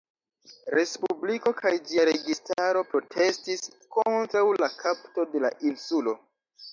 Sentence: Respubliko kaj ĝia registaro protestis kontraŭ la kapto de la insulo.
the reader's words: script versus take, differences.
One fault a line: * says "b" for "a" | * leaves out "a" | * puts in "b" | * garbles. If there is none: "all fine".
all fine